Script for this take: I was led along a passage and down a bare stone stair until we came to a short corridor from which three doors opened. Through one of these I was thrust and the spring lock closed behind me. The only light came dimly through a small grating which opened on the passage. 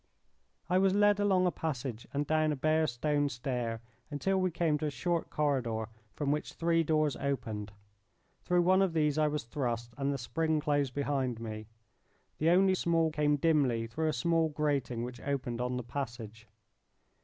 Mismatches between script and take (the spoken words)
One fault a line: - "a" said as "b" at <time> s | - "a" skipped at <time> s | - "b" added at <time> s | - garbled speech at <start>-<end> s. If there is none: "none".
- "lock" skipped at 10.6 s
- "light" said as "small" at 12.7 s